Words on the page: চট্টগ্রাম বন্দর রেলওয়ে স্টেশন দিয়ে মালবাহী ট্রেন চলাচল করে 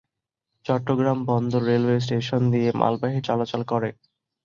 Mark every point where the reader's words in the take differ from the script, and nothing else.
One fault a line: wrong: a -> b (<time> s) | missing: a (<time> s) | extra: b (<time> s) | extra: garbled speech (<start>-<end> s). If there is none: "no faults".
missing: ট্রেন (3.2 s)